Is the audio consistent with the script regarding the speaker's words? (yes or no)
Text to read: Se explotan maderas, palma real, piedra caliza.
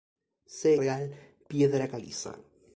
no